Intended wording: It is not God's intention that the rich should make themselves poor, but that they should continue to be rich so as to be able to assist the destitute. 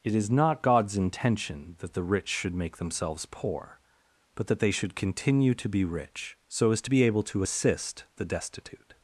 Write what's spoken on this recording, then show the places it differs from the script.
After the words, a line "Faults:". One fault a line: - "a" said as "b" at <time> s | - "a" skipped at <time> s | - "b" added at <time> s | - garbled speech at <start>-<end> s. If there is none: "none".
It is not God's intention that the rich should make themselves poor, but that they should continue to be rich so as to be able to assist the destitute.
Faults:
none